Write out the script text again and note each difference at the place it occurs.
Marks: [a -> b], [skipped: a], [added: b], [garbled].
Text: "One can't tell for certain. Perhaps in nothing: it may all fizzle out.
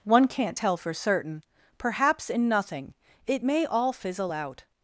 "One can't tell for certain. Perhaps in nothing: it may all fizzle out.